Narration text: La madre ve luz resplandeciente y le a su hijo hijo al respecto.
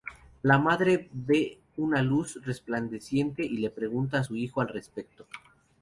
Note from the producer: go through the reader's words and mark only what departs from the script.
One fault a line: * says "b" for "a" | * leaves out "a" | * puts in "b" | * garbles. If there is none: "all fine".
* puts in "una"
* puts in "pregunta"
* leaves out "hijo"